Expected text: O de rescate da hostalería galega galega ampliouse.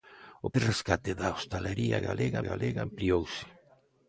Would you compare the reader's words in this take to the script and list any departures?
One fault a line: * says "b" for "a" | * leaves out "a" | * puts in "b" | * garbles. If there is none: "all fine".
all fine